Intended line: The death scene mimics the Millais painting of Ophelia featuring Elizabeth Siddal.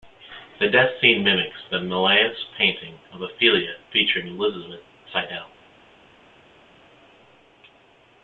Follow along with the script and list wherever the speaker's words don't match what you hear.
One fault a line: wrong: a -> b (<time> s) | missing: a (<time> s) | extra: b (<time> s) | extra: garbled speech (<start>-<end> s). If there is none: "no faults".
no faults